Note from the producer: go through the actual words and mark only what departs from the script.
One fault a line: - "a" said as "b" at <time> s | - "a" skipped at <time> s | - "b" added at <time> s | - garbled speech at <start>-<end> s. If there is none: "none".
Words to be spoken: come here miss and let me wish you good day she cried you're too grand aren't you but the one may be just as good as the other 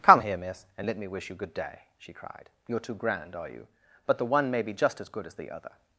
- "aren't" said as "are" at 3.3 s